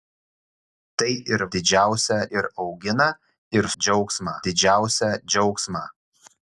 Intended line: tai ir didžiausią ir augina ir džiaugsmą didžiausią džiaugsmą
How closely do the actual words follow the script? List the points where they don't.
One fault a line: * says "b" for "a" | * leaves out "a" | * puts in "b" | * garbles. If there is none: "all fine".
all fine